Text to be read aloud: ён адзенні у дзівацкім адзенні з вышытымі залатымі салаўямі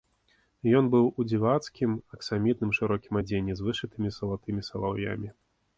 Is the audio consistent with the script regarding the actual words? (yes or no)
no